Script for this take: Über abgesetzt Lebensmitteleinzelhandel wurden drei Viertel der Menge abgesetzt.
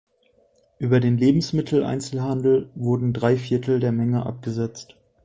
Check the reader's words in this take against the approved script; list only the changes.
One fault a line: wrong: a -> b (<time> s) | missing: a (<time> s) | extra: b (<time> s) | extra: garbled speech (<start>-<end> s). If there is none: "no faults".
wrong: abgesetzt -> den (1.0 s)